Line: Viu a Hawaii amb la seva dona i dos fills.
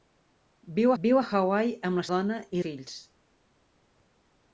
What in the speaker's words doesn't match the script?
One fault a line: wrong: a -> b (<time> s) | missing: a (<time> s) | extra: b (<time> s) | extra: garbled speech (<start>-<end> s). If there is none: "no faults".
extra: viu (1.0 s)
missing: seva (2.0 s)
missing: dos (2.6 s)